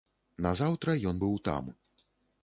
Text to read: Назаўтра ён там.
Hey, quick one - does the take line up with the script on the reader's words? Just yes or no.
no